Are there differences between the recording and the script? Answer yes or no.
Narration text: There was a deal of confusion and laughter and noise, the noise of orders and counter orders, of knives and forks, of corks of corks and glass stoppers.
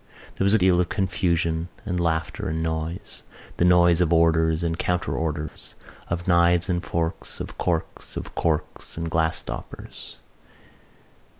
no